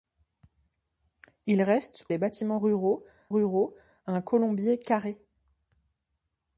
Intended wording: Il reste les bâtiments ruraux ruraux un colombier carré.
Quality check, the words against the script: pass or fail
pass